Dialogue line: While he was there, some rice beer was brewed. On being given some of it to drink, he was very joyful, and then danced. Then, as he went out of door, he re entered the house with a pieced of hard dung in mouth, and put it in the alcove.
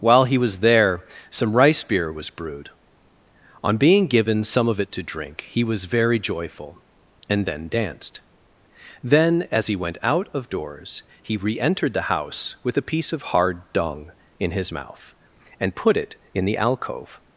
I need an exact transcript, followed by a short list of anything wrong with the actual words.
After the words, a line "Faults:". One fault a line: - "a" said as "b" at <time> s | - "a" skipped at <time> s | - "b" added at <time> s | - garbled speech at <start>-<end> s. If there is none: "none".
While he was there, some rice beer was brewed. On being given some of it to drink, he was very joyful, and then danced. Then, as he went out of doors, he re entered the house with a piece of hard dung in his mouth, and put it in the alcove.
Faults:
- "door" said as "doors" at 10.5 s
- "pieced" said as "piece" at 12.9 s
- "his" added at 14.5 s